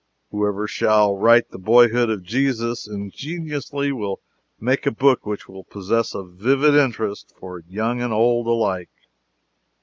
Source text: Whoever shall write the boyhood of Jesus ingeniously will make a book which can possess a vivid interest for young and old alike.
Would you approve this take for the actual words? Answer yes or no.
no